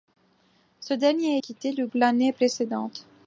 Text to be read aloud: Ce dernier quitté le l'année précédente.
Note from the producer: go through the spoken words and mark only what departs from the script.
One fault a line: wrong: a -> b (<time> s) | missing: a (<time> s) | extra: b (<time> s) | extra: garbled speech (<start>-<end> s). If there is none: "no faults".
no faults